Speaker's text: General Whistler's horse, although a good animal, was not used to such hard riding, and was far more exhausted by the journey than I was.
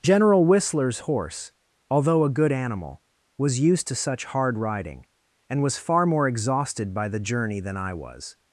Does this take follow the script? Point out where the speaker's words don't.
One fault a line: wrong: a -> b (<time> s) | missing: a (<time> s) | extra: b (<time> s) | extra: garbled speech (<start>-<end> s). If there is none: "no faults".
missing: not (3.6 s)